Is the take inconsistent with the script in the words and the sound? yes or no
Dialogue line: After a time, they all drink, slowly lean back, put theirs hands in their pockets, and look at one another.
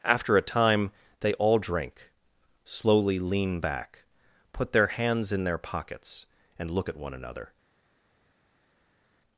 yes